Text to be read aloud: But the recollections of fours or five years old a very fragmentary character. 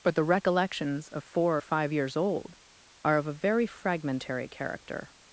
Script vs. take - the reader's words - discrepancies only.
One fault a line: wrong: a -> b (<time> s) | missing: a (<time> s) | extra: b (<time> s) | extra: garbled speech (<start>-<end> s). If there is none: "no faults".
wrong: fours -> four (1.2 s)
extra: are of (3.0 s)